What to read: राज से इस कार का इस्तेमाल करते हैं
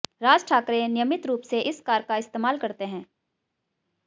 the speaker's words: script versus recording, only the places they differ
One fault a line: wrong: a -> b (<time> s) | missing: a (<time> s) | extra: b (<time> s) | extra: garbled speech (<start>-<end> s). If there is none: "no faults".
extra: ठाकरे नियमित रूप (0.5 s)